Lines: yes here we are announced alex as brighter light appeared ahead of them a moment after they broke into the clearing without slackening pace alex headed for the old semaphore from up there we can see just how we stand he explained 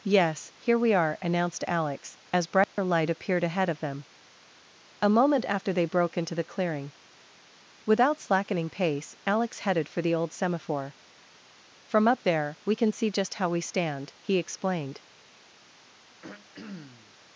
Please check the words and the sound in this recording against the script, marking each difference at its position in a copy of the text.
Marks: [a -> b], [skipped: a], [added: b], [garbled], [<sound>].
yes here we are announced alex as brighter [dropout] light appeared ahead of them a moment after they broke into the clearing without slackening pace alex headed for the old semaphore from up there we can see just how we stand he explained [throat clearing]